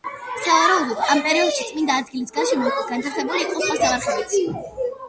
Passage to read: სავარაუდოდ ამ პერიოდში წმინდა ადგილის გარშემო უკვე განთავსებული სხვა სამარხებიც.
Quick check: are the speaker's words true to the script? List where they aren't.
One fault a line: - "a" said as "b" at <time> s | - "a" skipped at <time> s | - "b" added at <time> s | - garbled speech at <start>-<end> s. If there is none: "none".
- "იყო" added at 3.5 s